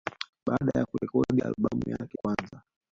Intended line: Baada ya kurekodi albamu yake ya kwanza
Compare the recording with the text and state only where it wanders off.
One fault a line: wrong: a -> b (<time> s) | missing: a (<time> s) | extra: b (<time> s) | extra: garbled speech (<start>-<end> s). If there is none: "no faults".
missing: ya (2.2 s)